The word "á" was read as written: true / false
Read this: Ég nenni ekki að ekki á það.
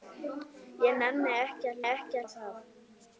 true